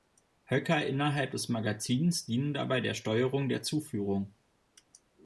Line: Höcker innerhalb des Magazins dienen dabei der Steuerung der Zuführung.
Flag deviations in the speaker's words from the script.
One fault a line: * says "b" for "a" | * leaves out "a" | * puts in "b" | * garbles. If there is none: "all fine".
all fine